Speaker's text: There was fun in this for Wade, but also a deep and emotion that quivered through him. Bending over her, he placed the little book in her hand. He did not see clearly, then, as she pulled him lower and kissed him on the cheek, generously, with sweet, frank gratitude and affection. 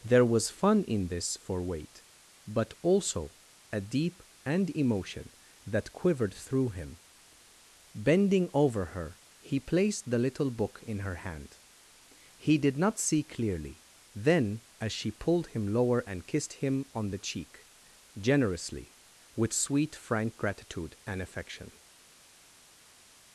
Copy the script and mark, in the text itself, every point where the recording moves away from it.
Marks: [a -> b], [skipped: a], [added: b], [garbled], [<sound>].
There was fun in this for Wade, but also a deep and emotion that quivered through him. Bending over her, he placed the little book in her hand. He did not see clearly, then, as she pulled him lower and kissed him on the cheek, generously, with sweet, frank gratitude and affection.